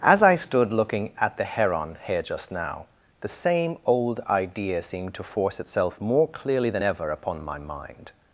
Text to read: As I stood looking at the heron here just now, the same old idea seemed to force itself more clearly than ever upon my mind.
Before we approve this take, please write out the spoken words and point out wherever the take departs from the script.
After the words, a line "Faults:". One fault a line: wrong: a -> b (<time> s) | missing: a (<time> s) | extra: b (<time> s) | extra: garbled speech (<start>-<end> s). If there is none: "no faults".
As I stood looking at the heron here just now, the same old idea seemed to force itself more clearly than ever upon my mind.
Faults:
no faults